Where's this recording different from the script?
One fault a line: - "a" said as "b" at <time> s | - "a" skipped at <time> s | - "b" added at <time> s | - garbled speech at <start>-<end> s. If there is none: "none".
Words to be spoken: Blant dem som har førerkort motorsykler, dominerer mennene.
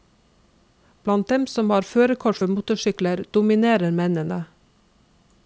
- "for" added at 2.4 s